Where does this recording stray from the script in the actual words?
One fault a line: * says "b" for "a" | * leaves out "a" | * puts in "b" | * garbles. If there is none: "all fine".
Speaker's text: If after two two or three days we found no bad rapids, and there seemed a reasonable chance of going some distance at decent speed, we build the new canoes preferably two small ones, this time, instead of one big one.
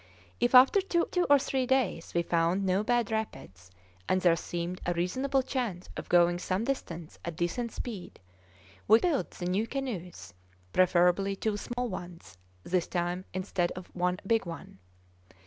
all fine